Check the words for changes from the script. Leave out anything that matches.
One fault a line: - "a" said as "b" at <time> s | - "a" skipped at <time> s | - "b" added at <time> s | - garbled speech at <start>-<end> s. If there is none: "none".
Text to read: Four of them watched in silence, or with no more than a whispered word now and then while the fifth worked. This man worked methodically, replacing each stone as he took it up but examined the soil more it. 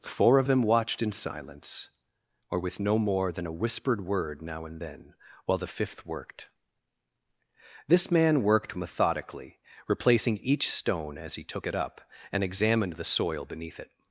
- "but" said as "and" at 12.3 s
- "more" said as "beneath" at 13.4 s